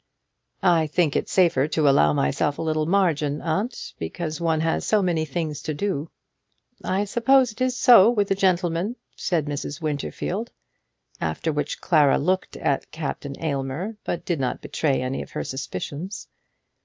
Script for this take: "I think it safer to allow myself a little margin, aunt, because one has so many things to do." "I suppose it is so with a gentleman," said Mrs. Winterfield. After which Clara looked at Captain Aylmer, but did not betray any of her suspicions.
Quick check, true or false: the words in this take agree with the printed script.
true